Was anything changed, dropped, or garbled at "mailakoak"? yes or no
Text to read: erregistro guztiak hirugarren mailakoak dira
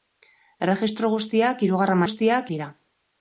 yes